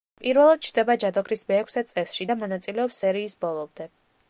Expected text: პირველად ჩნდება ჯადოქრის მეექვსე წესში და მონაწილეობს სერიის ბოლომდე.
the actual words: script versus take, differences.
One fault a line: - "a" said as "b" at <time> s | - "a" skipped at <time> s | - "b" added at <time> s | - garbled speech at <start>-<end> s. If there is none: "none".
none